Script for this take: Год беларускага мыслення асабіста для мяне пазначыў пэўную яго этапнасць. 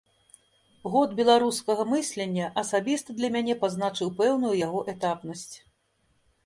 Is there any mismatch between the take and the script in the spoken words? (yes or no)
no